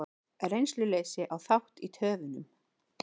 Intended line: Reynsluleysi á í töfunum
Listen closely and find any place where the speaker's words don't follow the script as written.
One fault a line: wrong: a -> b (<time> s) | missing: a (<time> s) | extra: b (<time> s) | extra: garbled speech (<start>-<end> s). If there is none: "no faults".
extra: þátt (1.5 s)